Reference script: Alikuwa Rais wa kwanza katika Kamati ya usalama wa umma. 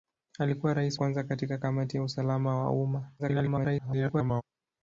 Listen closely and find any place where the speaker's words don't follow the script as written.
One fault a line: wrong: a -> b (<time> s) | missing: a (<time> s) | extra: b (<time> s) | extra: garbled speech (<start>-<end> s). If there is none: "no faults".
missing: wa (1.0 s)
extra: garbled speech (3.2-4.4 s)